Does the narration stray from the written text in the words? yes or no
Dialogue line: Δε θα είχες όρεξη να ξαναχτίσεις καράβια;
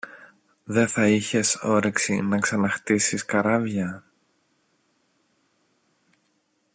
no